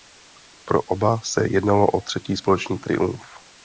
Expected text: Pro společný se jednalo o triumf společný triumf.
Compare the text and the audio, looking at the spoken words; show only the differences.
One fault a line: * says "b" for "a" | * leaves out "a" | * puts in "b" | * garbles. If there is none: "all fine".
* says "oba" for "společný"
* says "třetí" for "triumf"